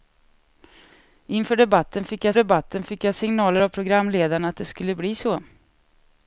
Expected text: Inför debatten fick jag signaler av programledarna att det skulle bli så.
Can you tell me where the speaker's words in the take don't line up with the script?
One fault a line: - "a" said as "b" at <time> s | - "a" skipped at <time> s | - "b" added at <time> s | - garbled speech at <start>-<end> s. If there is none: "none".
- "debatten fick jag" added at 2.3 s